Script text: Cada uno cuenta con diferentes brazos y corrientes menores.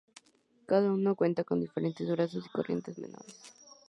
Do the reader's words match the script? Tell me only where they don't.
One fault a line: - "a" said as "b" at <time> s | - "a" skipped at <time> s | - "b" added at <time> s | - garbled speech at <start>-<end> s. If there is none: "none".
none